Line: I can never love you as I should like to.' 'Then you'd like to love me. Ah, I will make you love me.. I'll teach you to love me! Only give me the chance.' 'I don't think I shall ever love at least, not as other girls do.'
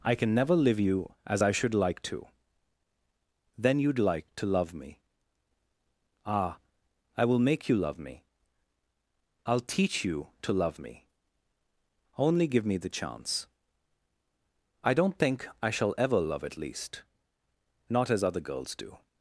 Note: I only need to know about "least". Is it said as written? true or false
true